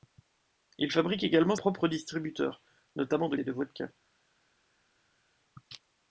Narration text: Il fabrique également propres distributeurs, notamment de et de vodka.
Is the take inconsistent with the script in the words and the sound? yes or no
no